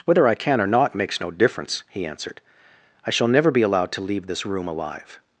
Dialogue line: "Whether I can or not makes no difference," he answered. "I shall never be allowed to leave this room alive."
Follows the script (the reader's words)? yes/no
yes